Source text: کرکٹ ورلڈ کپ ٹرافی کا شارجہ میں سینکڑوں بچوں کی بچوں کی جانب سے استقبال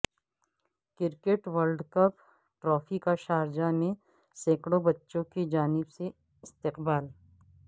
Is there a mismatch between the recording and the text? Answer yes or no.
yes